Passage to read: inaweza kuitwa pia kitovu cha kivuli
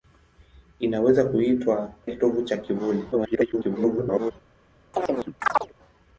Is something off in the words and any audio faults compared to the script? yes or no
yes